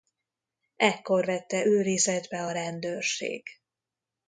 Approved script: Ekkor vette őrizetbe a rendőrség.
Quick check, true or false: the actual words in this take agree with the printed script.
true